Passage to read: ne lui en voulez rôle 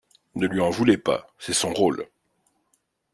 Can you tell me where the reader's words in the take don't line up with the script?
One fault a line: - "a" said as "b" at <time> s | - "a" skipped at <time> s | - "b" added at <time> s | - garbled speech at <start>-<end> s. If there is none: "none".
- "pas c'est son" added at 1.0 s